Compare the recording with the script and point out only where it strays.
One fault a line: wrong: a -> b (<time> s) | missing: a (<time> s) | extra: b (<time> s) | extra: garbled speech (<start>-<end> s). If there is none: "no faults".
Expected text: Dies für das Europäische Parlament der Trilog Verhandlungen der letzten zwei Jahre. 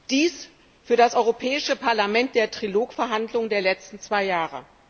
no faults